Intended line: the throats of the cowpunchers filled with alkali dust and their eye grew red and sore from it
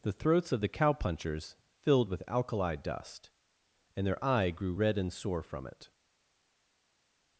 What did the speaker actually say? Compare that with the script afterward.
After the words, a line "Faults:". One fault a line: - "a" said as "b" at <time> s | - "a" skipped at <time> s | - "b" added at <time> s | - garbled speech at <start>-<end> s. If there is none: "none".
the throats of the cowpunchers filled with alkali dust and their eye grew red and sore from it
Faults:
none